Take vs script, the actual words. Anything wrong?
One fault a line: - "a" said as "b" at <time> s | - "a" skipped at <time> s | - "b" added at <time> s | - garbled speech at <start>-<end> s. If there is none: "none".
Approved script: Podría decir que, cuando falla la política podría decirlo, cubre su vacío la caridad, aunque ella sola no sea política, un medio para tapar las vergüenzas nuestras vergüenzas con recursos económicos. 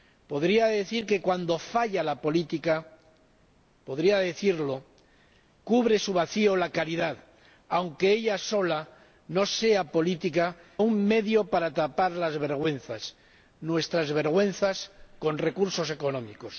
none